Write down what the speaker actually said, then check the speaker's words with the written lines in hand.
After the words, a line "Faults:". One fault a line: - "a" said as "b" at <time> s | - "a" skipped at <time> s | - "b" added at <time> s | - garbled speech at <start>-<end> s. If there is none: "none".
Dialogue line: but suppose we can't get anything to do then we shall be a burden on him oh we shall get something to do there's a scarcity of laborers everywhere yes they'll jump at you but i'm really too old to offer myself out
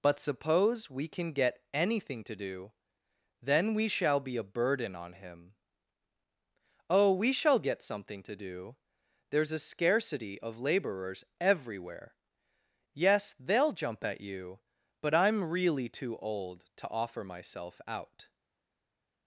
but suppose we can get anything to do then we shall be a burden on him oh we shall get something to do there's a scarcity of laborers everywhere yes they'll jump at you but i'm really too old to offer myself out
Faults:
- "can't" said as "can" at 1.1 s